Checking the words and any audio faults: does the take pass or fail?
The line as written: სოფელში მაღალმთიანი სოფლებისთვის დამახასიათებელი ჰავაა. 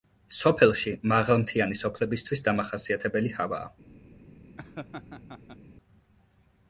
fail